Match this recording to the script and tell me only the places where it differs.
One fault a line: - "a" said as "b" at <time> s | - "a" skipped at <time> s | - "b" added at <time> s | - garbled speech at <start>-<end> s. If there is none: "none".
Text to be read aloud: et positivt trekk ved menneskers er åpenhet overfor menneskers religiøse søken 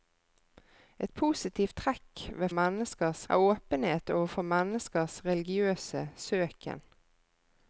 none